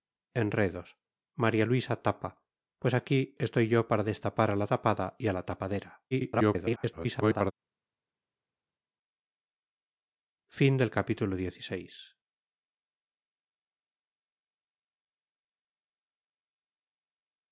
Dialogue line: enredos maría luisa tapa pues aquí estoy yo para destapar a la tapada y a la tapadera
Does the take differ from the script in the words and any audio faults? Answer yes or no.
yes